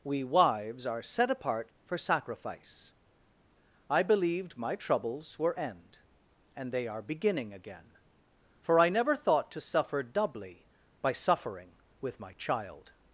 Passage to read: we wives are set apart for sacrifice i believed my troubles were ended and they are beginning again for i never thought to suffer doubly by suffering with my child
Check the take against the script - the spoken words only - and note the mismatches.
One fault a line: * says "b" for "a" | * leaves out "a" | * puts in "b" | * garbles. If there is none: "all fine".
* says "end" for "ended"